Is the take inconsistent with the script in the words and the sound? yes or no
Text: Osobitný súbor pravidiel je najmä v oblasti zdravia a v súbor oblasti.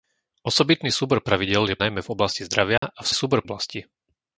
yes